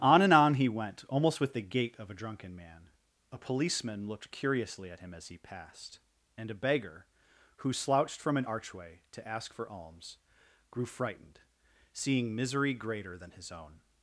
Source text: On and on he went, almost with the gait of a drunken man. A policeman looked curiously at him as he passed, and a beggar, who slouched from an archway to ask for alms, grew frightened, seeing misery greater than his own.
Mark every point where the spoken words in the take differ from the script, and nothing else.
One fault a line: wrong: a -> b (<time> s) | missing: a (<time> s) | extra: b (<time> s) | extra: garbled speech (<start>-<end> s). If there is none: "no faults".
no faults